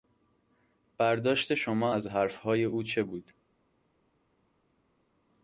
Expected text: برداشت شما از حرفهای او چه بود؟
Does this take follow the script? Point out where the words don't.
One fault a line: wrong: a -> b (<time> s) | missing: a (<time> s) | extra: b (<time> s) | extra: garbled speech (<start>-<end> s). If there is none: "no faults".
no faults